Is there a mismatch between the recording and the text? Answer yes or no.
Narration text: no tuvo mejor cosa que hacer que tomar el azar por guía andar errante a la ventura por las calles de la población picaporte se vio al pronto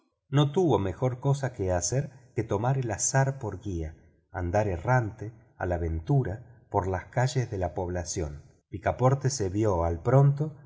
no